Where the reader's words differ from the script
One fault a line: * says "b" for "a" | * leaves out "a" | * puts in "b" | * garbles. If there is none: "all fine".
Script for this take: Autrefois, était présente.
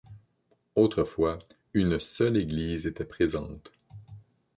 * puts in "une seule église"